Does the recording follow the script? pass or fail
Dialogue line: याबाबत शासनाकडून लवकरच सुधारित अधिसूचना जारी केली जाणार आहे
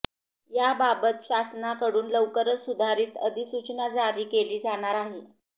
pass